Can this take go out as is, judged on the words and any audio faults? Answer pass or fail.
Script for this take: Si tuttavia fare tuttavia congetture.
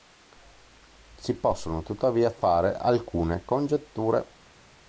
fail